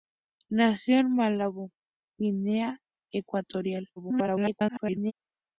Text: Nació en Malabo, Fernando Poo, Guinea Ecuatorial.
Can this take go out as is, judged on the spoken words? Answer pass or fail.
fail